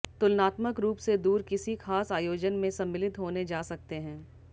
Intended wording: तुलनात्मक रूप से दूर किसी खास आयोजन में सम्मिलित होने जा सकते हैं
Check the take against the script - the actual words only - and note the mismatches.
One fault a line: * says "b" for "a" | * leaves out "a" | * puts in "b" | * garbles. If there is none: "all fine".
all fine